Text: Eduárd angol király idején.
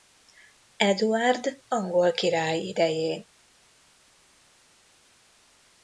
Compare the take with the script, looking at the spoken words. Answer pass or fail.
pass